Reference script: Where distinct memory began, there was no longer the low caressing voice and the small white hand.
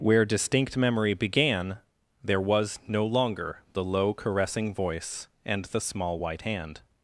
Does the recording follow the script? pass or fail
pass